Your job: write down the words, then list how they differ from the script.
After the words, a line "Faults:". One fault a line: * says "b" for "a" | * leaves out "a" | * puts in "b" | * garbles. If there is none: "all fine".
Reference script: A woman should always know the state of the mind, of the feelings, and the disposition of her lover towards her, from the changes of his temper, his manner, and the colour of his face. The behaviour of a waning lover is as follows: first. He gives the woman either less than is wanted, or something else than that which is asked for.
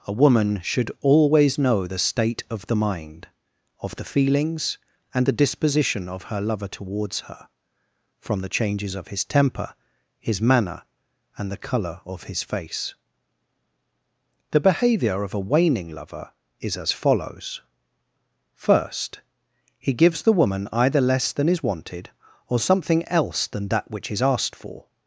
A woman should always know the state of the mind, of the feelings, and the disposition of her lover towards her, from the changes of his temper, his manner, and the colour of his face. The behaviour of a waning lover is as follows: first. He gives the woman either less than is wanted, or something else than that which is asked for.
Faults:
all fine